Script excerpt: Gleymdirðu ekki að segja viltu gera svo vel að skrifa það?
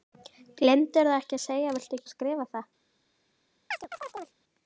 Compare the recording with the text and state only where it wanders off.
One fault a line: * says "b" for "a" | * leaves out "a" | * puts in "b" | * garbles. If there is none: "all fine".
* leaves out "gera svo vel"